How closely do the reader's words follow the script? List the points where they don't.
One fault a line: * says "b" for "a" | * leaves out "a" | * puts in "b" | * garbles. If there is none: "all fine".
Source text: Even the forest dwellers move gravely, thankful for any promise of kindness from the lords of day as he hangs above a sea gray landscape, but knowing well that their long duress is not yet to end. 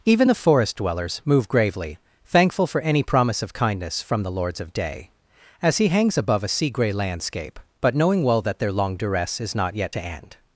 all fine